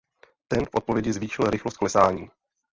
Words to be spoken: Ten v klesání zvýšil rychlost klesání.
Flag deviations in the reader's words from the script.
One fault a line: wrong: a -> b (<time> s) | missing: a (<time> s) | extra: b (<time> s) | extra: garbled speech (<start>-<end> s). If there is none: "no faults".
wrong: klesání -> odpovědi (0.8 s)